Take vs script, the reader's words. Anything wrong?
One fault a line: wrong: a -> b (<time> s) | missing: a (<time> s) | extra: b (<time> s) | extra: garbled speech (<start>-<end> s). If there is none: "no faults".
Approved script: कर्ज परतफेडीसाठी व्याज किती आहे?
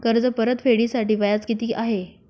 no faults